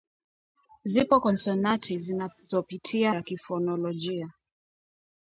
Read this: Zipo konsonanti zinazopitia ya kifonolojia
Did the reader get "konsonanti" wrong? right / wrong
right